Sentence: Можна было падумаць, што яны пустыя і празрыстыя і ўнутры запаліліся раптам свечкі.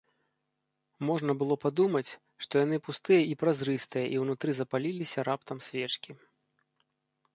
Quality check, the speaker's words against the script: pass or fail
pass